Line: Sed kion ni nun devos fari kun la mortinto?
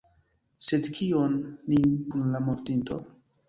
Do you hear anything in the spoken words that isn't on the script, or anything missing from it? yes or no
yes